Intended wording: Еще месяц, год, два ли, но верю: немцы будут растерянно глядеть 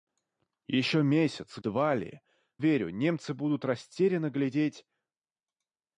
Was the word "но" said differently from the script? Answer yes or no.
yes